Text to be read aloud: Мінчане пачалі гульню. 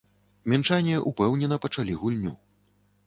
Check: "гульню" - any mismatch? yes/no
no